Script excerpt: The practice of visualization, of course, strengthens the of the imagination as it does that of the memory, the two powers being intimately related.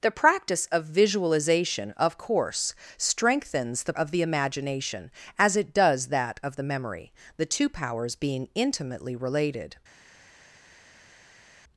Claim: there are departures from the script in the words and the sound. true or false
false